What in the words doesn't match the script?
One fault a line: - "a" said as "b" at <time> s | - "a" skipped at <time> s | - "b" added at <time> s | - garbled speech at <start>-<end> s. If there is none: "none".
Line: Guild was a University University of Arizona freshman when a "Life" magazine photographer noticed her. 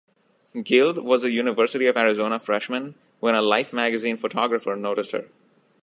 - "University" skipped at 1.9 s